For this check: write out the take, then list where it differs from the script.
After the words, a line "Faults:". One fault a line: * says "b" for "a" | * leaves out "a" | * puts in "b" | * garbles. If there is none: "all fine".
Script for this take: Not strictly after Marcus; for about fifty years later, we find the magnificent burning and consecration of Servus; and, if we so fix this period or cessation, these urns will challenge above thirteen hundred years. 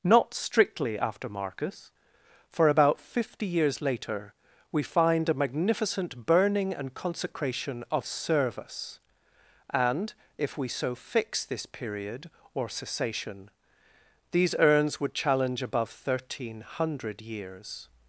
Not strictly after Marcus; for about fifty years later, we find a magnificent burning and consecration of Servus; and, if we so fix this period or cessation, these urns would challenge above thirteen hundred years.
Faults:
* says "a" for "the"
* says "would" for "will"